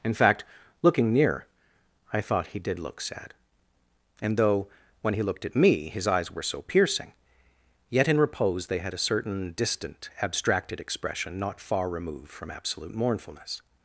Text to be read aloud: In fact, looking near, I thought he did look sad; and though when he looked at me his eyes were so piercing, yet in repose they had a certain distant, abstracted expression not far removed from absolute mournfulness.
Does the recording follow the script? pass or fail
pass